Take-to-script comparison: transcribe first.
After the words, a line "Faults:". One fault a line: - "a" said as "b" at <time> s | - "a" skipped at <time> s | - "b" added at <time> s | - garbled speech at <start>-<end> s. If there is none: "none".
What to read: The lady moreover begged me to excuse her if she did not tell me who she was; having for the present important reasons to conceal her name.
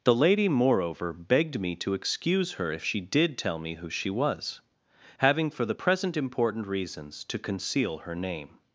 The lady moreover begged me to excuse her if she did tell me who she was; having for the present important reasons to conceal her name.
Faults:
- "not" skipped at 3.4 s